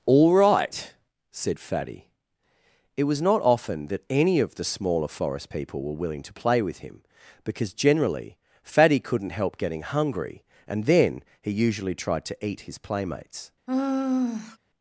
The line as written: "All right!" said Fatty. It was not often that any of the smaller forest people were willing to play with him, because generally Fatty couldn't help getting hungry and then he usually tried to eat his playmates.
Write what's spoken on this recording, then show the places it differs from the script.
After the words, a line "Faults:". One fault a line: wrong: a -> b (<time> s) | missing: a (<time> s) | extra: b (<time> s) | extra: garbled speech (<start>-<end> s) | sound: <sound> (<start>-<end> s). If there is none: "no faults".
"All right!" said Fatty. It was not often that any of the smaller forest people were willing to play with him, because generally Fatty couldn't help getting hungry and then he usually tried to eat his playmates.
Faults:
sound: sigh (13.7-14.6 s)